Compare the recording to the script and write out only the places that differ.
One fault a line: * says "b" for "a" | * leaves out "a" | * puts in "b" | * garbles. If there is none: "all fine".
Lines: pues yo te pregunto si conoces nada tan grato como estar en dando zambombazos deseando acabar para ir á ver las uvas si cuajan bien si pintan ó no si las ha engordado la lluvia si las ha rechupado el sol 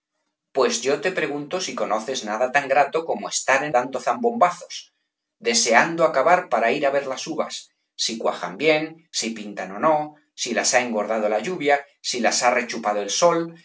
all fine